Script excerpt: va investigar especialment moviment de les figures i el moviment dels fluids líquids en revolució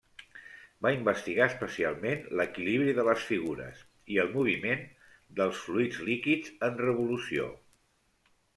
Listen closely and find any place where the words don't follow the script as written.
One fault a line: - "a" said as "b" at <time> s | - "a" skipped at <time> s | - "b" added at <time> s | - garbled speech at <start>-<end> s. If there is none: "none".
- "moviment" said as "l'equilibri" at 2.4 s